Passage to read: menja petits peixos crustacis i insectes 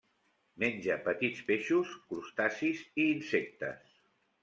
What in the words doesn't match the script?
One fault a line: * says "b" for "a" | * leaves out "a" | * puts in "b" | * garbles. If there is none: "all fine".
all fine